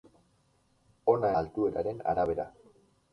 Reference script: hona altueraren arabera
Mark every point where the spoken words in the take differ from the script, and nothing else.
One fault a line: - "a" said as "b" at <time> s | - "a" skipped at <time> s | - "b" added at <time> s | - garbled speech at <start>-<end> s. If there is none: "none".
none